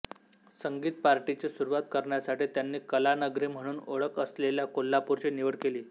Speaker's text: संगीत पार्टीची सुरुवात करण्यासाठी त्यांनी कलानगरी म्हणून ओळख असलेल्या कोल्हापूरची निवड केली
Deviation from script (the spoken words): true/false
false